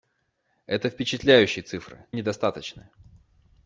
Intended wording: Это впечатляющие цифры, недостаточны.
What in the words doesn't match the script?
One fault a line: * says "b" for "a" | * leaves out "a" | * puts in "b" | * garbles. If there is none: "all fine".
all fine